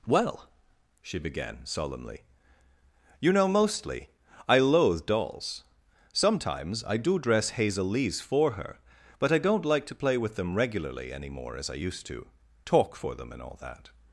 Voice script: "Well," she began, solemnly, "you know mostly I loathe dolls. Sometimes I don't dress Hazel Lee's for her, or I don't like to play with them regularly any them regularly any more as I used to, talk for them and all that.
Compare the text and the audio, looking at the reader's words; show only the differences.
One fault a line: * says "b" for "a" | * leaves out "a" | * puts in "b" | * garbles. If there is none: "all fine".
* says "do" for "don't"
* says "but" for "or"
* leaves out "them regularly any"